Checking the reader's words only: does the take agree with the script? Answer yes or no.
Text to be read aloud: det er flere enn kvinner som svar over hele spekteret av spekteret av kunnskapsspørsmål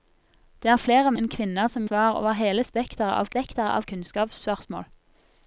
yes